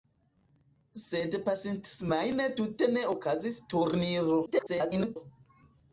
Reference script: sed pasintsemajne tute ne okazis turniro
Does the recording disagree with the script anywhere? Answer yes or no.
yes